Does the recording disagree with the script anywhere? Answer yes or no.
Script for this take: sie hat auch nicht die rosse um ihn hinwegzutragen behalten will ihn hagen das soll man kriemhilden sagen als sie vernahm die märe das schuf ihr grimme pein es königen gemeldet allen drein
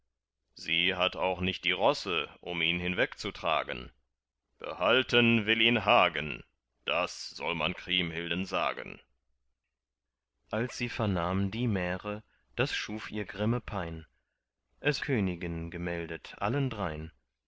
no